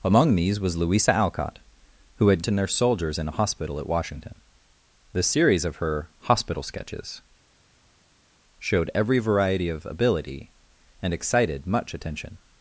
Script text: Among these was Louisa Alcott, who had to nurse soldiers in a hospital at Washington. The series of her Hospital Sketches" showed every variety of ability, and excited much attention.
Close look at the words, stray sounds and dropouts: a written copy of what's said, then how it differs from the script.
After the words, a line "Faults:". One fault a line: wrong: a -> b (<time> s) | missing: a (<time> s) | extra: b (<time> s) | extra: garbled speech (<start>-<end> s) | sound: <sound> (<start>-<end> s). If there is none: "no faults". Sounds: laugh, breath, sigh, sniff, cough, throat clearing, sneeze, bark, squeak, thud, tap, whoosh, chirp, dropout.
Among these was Louisa Alcott, who had to nurse soldiers in a hospital at Washington. The series of her Hospital Sketches" showed every variety of ability, and excited much attention.
Faults:
no faults